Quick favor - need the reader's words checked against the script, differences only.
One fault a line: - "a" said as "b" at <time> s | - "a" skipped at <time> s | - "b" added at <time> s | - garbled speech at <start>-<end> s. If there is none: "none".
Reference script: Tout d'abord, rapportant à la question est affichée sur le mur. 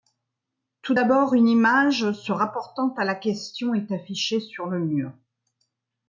- "une image se" added at 1.3 s